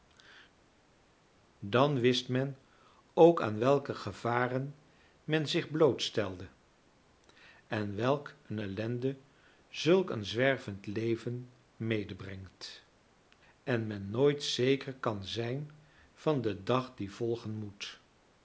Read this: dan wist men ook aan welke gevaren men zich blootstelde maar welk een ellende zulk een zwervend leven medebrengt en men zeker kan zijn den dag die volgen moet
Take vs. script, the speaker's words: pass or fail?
fail